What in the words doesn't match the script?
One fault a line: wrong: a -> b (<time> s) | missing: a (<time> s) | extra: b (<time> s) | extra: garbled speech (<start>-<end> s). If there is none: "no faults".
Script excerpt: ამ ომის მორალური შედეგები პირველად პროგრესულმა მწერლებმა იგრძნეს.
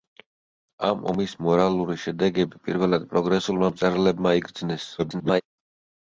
extra: garbled speech (5.0-5.4 s)